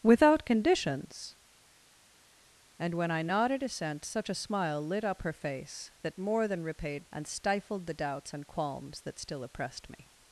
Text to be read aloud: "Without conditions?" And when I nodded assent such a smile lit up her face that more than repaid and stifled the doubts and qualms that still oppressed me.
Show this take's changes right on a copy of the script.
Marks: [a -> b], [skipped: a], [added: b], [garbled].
"Without conditions?" And when I nodded assent such a smile lit up her face that more than repaid and stifled the doubts and qualms that still oppressed me.